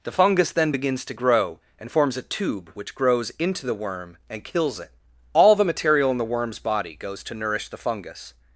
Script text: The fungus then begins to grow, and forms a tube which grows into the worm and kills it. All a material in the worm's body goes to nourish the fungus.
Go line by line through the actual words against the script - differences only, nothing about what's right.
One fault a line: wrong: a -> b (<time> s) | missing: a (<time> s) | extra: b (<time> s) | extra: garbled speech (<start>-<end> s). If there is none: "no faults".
wrong: a -> the (5.5 s)